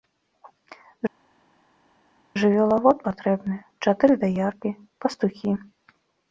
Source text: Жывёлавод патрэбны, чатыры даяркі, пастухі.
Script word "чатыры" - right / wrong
right